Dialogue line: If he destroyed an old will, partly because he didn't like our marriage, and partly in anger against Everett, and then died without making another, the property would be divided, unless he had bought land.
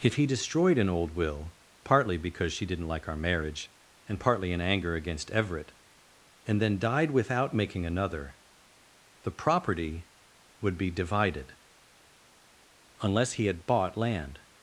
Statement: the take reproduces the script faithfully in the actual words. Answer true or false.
false